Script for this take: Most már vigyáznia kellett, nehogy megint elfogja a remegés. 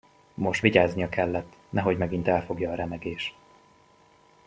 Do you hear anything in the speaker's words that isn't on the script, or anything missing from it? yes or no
yes